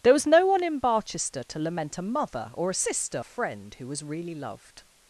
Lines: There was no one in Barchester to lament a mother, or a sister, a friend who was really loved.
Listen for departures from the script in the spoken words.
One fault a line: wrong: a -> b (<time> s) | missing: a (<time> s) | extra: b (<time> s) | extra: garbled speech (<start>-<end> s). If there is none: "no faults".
no faults